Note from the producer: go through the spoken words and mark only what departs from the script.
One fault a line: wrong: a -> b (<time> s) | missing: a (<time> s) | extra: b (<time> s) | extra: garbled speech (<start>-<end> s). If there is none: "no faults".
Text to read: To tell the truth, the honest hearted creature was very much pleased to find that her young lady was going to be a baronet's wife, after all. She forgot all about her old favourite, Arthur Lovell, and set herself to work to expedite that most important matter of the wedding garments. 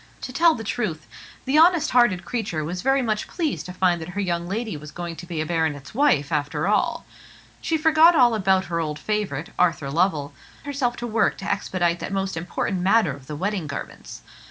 missing: and set (10.3 s)